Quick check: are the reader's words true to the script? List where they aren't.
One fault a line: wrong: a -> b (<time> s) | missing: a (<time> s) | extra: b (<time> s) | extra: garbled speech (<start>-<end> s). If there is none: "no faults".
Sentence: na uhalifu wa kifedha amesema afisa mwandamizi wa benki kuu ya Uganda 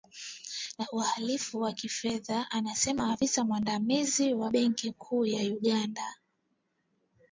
no faults